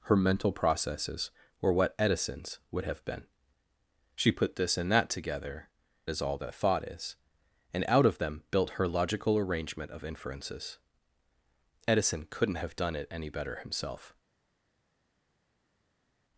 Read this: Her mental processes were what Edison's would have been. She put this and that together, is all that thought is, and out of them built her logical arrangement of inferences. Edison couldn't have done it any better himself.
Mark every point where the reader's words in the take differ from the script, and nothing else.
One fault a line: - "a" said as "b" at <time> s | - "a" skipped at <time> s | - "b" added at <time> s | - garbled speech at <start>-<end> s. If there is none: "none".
none